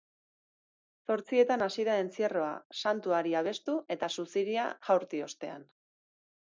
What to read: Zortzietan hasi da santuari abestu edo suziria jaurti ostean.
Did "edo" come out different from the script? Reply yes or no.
yes